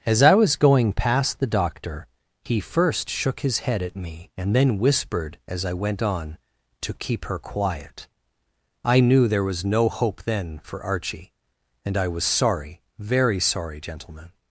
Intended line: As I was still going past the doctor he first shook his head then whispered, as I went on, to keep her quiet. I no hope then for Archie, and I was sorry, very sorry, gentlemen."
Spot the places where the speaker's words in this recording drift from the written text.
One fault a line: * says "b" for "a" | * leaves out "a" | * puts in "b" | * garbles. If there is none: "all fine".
* leaves out "still"
* puts in "at me and"
* puts in "knew there was"